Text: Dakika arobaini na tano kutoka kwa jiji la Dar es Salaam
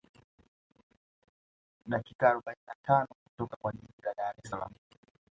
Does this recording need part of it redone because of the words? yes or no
no